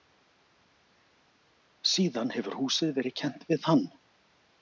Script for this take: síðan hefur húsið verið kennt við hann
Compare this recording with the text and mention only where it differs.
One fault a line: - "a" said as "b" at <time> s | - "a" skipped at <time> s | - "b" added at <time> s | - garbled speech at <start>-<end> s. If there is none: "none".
none